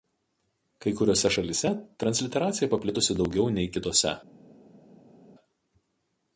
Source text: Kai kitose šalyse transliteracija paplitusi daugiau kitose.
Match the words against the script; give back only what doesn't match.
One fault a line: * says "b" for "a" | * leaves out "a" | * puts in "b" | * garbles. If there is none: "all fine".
* says "kuriose" for "kitose"
* puts in "nei"